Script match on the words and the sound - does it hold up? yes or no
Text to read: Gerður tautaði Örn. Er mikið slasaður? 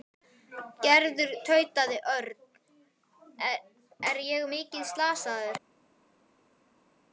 no